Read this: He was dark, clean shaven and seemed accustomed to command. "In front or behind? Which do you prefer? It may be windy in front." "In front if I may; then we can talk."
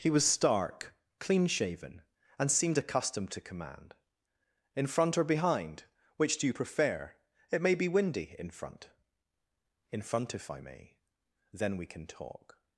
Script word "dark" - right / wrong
wrong